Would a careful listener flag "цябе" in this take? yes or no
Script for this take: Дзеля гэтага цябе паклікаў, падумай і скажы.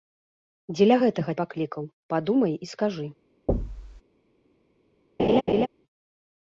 yes